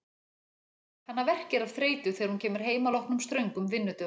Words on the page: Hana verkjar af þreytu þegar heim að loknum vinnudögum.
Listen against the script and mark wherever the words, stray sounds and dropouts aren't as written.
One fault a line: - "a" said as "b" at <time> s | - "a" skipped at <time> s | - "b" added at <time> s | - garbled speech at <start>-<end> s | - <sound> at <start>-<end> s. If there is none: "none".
- "hún kemur" added at 2.3 s
- "ströngum" added at 3.3 s